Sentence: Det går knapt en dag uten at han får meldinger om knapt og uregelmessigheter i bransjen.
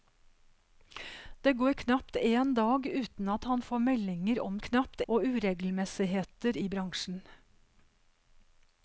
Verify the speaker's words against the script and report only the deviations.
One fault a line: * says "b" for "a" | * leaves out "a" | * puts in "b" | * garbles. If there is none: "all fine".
all fine